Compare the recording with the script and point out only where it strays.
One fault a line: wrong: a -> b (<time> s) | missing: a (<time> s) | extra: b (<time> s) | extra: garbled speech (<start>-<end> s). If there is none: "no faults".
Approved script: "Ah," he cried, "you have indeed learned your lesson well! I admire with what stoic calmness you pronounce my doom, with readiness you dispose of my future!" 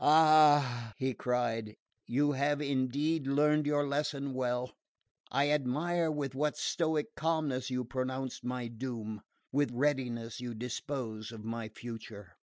no faults